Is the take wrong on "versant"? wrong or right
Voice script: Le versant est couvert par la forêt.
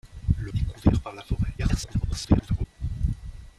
wrong